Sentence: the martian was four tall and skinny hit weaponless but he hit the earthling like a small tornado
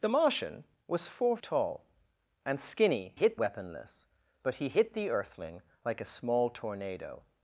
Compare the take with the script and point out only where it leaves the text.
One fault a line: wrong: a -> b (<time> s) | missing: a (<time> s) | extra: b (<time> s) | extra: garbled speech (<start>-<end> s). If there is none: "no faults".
no faults